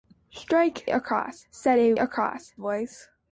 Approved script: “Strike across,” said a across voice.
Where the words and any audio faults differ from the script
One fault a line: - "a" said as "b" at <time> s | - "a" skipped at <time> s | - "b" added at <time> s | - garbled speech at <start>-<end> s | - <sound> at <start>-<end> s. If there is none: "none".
none